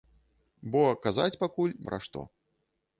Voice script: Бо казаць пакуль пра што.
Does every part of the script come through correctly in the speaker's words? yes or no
yes